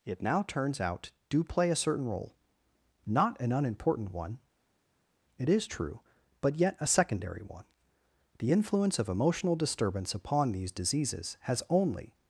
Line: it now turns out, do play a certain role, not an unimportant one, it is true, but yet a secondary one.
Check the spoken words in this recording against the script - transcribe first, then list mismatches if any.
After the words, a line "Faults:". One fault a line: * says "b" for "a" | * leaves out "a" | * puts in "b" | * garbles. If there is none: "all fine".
it now turns out, do play a certain role, not an unimportant one, it is true, but yet a secondary one. The influence of emotional disturbance upon these diseases has only
Faults:
* puts in "The influence of emotional disturbance upon these diseases has only"